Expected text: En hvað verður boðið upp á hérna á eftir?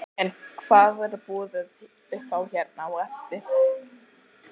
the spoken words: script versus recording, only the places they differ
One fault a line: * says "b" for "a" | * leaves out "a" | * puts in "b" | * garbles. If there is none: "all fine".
all fine